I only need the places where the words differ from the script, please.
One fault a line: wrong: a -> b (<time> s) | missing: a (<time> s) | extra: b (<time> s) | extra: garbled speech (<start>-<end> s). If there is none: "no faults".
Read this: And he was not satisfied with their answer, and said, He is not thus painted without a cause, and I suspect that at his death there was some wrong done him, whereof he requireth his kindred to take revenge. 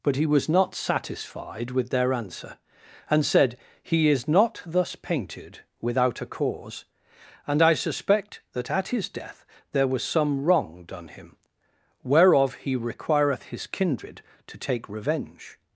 wrong: And -> But (0.0 s)